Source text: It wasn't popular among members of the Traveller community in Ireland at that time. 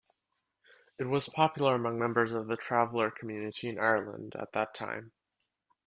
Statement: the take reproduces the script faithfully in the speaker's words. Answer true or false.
false